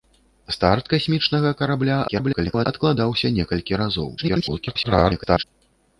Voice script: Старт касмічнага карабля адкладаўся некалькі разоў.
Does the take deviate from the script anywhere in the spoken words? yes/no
yes